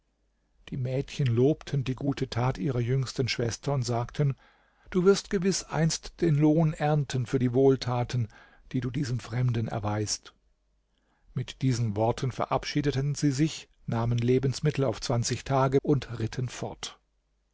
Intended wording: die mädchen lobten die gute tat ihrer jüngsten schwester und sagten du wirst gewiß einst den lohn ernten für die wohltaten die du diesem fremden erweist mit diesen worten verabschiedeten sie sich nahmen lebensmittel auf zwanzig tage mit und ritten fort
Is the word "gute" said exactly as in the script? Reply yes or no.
yes